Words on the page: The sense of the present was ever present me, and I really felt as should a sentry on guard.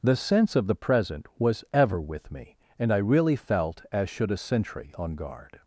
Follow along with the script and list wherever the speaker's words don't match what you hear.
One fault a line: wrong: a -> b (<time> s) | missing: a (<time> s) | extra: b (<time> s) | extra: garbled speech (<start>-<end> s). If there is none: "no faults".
wrong: present -> with (2.0 s)